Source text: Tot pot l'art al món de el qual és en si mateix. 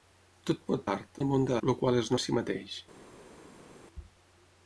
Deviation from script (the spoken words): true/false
false